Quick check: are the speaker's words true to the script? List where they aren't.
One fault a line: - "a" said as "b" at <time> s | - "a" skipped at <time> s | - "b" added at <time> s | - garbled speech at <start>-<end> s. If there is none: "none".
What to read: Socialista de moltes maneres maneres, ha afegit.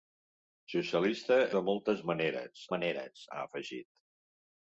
none